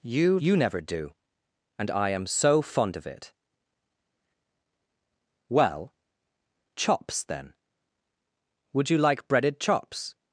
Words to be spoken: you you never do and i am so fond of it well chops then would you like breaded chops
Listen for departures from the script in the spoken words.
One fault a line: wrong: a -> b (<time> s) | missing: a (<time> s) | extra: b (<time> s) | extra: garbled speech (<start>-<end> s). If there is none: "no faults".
no faults